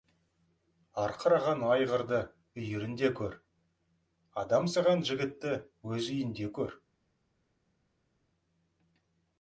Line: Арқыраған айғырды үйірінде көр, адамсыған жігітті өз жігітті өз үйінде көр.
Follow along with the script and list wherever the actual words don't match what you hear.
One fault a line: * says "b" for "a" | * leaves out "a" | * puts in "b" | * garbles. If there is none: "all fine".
* leaves out "жігітті өз"